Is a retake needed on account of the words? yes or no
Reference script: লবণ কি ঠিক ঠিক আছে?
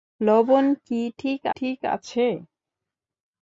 no